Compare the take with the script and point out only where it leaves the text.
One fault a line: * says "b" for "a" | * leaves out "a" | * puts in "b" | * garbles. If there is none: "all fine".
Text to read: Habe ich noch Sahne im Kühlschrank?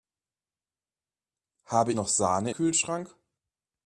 * leaves out "ich"
* leaves out "im"